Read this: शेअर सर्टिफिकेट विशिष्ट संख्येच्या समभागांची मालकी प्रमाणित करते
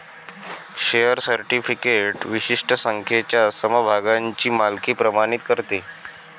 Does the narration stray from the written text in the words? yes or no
no